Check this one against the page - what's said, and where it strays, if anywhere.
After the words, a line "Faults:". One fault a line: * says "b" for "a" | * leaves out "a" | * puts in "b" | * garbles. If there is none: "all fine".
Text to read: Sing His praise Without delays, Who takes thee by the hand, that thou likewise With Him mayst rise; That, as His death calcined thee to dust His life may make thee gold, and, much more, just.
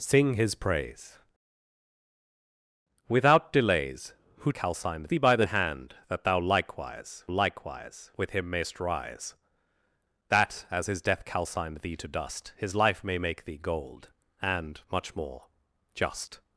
Sing His praise Without delays, Who calcined thee by the hand, that thou likewise likewise With Him mayst rise; That, as His death calcined thee to dust His life may make thee gold, and, much more, just.
Faults:
* says "calcined" for "takes"
* puts in "likewise"